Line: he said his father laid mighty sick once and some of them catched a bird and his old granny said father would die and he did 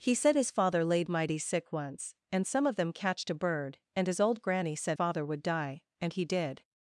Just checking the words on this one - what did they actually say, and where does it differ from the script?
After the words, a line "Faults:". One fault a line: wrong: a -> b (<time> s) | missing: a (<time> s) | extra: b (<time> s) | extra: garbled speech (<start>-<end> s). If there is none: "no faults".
he said his father laid mighty sick once and some of them catched a bird and his old granny said father would die and he did
Faults:
no faults